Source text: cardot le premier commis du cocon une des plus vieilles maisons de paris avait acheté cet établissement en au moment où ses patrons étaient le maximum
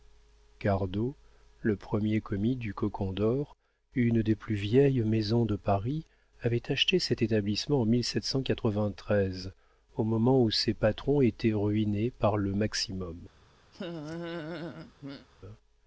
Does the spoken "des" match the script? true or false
true